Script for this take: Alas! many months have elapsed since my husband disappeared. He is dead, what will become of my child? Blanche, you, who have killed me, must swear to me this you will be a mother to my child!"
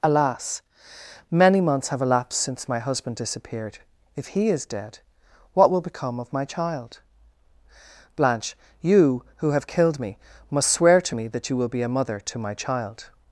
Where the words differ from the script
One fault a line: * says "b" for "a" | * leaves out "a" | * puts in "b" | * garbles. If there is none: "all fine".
* puts in "If"
* says "that" for "this"